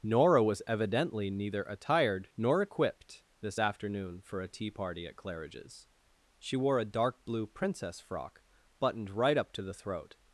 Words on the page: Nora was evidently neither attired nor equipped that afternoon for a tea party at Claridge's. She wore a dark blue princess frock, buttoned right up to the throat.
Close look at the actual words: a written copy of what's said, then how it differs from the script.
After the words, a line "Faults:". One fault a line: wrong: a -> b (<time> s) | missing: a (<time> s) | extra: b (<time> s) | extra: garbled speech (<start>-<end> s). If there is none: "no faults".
Nora was evidently neither attired nor equipped this afternoon for a tea party at Claridge's. She wore a dark blue princess frock, buttoned right up to the throat.
Faults:
wrong: that -> this (3.4 s)